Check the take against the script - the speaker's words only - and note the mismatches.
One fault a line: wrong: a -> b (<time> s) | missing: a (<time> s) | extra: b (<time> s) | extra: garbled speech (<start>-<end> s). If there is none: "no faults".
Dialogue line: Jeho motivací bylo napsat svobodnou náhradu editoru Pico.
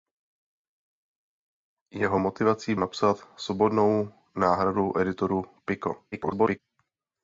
missing: bylo (2.7 s)
extra: garbled speech (6.1-6.6 s)